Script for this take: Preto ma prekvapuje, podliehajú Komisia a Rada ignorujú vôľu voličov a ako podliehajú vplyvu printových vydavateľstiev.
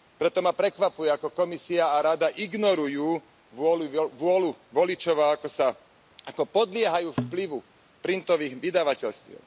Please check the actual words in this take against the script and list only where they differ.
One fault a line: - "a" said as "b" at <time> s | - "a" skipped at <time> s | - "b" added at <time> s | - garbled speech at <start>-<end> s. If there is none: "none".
- "podliehajú" said as "ako" at 1.1 s